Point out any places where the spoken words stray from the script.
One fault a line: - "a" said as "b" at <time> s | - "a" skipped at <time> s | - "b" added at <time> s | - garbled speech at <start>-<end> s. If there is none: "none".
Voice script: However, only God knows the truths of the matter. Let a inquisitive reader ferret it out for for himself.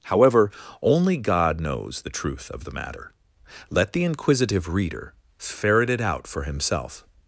- "truths" said as "truth" at 2.1 s
- "a" said as "the" at 3.9 s
- "for" skipped at 6.4 s